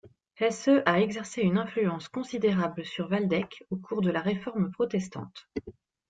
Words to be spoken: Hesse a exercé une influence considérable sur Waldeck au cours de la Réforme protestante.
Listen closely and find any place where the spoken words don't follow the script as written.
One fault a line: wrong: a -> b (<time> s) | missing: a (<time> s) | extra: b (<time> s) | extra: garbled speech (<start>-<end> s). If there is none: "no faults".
no faults